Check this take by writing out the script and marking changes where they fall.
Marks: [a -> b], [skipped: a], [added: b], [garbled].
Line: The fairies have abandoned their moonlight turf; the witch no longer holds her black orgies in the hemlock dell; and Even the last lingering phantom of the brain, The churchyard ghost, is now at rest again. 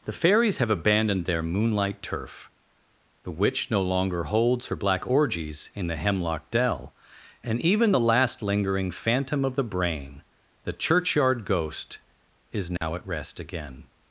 The fairies have abandoned their moonlight turf; the witch no longer holds her black orgies in the hemlock dell; and Even the last lingering phantom of the brain, The churchyard ghost, is now at rest again.